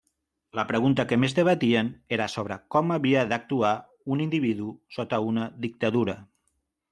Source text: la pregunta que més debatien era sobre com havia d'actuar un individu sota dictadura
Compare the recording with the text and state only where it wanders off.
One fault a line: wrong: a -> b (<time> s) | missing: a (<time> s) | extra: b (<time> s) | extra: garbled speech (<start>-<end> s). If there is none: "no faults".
extra: una (5.3 s)